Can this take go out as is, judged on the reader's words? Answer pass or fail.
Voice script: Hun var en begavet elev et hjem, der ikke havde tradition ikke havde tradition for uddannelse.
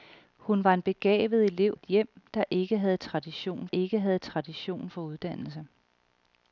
pass